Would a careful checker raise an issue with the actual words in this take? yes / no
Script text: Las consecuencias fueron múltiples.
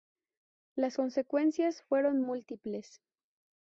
no